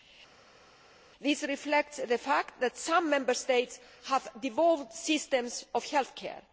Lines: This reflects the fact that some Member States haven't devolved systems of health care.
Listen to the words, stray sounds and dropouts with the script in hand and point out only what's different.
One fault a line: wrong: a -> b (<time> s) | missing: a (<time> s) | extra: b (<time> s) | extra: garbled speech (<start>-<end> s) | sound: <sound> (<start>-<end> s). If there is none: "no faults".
wrong: haven't -> have (4.0 s)